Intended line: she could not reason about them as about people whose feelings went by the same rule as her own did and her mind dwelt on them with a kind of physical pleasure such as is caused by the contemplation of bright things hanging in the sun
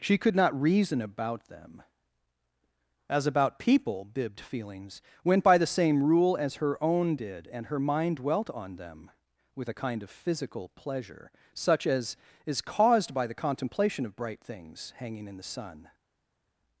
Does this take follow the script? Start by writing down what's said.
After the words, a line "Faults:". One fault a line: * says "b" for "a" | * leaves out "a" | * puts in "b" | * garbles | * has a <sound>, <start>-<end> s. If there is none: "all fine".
she could not reason about them as about people bibbed feelings went by the same rule as her own did and her mind dwelt on them with a kind of physical pleasure such as is caused by the contemplation of bright things hanging in the sun
Faults:
* says "bibbed" for "whose"